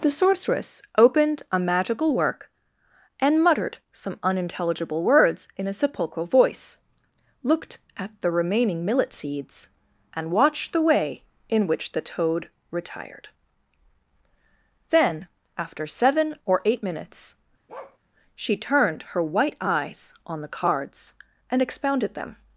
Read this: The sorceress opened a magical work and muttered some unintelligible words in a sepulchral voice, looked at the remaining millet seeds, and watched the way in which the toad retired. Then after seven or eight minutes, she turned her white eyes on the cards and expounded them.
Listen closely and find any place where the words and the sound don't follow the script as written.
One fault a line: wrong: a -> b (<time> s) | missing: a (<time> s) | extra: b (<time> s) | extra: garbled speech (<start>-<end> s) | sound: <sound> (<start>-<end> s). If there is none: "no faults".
sound: bark (17.7-18.0 s)